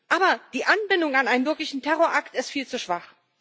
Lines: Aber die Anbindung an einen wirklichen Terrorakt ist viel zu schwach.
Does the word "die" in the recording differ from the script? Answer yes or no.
no